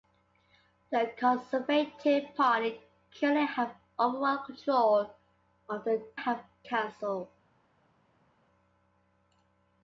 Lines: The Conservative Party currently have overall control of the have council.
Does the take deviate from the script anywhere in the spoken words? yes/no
no